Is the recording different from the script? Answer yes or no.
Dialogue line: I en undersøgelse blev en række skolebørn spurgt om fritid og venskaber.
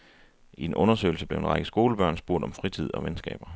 no